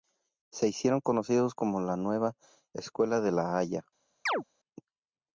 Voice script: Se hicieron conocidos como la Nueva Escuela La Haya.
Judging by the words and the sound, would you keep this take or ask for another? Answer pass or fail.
fail